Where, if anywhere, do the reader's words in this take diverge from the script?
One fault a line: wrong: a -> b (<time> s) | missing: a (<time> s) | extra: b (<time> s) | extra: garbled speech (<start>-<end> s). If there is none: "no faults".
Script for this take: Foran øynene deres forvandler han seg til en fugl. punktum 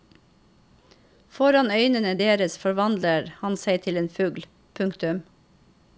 no faults